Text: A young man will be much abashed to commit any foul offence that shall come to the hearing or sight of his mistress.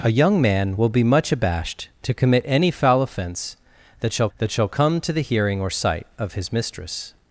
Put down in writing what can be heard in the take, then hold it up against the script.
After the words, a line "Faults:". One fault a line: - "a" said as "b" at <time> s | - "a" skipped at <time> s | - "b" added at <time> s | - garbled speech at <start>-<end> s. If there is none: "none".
A young man will be much abashed to commit any foul offence that shall that shall come to the hearing or sight of his mistress.
Faults:
- "that shall" added at 4.4 s